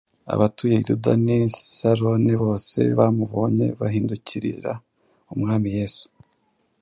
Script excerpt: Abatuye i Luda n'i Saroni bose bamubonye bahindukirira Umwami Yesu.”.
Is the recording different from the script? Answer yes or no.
no